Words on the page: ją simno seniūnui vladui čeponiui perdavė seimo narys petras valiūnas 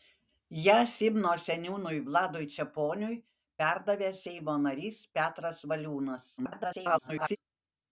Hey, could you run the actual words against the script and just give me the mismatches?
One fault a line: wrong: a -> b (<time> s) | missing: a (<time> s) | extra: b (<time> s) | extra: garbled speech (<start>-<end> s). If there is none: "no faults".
extra: garbled speech (6.4-7.4 s)